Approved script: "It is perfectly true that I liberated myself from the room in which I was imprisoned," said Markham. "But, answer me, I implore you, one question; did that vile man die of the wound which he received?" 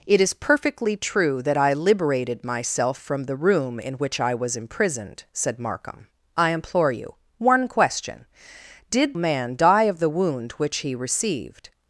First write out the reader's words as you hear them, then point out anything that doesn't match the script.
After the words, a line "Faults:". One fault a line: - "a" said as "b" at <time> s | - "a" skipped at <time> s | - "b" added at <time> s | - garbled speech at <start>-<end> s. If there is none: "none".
"It is perfectly true that I liberated myself from the room in which I was imprisoned," said Markham. "I implore you, one question; did man die of the wound which he received?"
Faults:
- "But answer me" skipped at 6.1 s
- "that vile" skipped at 9.1 s